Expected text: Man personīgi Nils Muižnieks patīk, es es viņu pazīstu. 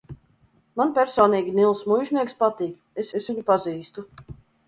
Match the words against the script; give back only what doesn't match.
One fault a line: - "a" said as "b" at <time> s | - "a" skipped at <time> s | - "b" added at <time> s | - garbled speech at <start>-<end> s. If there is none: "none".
none